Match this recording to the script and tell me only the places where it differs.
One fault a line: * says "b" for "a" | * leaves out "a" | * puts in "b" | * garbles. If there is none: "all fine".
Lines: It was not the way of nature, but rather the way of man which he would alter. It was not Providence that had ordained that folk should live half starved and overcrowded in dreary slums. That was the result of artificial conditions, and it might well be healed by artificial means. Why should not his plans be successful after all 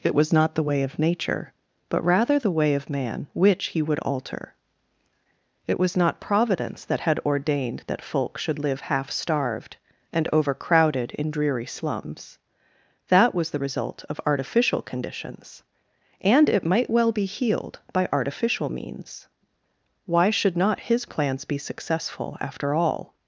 all fine